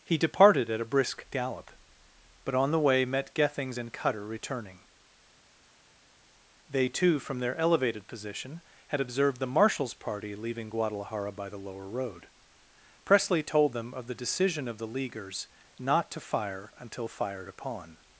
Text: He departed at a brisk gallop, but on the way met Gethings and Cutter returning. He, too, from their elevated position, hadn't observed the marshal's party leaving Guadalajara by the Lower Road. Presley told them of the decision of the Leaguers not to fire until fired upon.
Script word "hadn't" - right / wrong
wrong